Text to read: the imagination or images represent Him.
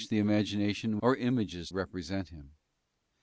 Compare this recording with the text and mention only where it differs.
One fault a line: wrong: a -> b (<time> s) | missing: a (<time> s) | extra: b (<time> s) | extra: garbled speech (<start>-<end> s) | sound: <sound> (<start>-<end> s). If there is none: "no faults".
no faults